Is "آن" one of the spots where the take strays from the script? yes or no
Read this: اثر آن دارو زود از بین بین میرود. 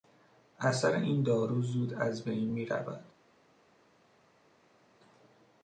yes